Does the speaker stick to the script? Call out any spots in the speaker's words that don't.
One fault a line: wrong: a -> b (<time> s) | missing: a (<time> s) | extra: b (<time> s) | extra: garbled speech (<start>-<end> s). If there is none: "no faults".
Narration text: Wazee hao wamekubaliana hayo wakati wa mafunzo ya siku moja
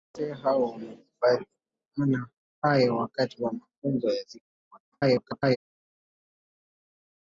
extra: garbled speech (4.9-5.6 s)